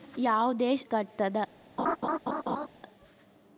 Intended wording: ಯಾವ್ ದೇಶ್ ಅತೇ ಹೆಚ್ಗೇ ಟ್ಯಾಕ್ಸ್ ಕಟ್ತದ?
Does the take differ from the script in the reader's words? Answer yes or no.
yes